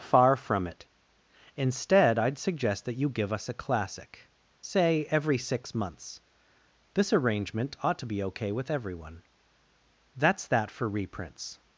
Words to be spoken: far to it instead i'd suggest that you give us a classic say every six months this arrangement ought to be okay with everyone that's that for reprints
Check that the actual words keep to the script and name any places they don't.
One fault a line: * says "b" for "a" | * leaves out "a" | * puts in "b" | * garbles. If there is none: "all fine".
* says "from" for "to"